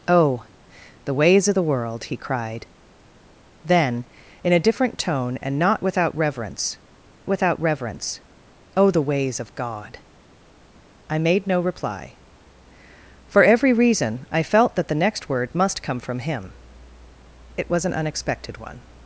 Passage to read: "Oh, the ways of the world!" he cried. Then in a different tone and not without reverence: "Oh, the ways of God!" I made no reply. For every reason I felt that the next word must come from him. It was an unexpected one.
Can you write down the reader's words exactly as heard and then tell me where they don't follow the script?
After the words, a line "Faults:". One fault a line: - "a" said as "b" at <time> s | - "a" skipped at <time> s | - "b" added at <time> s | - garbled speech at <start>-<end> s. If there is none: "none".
"Oh, the ways of the world!" he cried. Then in a different tone and not without reverence without reverence: "Oh, the ways of God!" I made no reply. For every reason I felt that the next word must come from him. It was an unexpected one.
Faults:
- "without reverence" added at 7.3 s